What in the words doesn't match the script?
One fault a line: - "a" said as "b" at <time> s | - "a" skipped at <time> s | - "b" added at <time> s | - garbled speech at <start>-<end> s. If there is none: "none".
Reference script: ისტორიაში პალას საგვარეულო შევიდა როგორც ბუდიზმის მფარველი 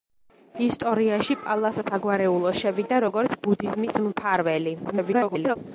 - garbled speech at 4.8-5.6 s